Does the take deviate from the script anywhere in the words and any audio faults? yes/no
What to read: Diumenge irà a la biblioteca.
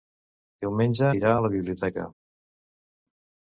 no